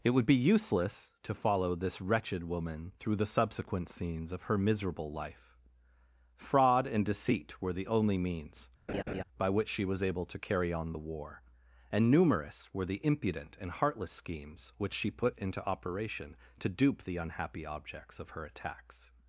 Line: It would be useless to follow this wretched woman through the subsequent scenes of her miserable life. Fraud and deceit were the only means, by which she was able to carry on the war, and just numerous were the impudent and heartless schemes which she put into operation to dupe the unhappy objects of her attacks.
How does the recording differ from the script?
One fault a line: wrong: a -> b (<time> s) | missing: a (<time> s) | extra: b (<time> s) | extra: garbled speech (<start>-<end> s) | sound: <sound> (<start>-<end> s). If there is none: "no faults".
sound: laugh (8.9-9.2 s)
missing: just (12.1 s)